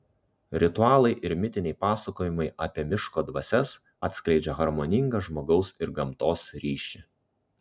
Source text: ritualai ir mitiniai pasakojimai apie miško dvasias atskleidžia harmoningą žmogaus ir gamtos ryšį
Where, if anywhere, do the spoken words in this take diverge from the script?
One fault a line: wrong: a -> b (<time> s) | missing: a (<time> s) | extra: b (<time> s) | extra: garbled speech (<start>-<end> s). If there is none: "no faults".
no faults